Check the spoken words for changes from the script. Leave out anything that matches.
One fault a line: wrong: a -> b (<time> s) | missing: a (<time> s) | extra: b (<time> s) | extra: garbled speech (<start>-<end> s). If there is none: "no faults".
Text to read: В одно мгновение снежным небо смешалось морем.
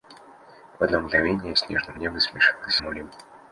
no faults